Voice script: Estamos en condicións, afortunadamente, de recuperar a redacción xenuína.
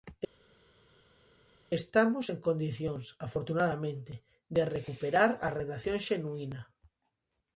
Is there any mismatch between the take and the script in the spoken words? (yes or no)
no